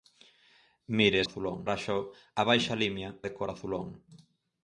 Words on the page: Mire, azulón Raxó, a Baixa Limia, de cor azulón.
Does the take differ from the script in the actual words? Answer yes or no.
no